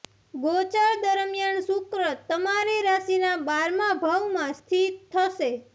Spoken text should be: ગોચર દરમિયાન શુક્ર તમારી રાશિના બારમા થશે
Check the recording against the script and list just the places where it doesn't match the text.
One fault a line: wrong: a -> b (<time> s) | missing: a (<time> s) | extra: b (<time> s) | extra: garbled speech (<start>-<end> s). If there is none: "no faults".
extra: ભાવમાં સ્થિત (4.0 s)